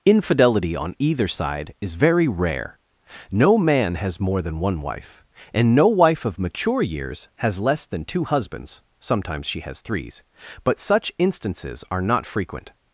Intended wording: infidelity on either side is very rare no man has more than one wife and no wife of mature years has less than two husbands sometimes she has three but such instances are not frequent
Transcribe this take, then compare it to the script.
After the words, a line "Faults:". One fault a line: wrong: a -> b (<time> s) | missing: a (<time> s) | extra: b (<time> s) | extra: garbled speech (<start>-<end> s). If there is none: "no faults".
infidelity on either side is very rare no man has more than one wife and no wife of mature years has less than two husbands sometimes she has threes but such instances are not frequent
Faults:
wrong: three -> threes (9.8 s)